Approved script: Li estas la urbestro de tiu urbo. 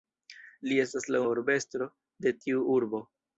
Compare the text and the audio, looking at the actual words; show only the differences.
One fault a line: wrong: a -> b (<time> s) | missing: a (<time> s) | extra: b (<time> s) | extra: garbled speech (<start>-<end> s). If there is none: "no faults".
no faults